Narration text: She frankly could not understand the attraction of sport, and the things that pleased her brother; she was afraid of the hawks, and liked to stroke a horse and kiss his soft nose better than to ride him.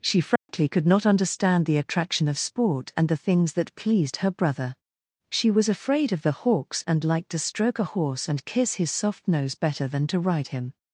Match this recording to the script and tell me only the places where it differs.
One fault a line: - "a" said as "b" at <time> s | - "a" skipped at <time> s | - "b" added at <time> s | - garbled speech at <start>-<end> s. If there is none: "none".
none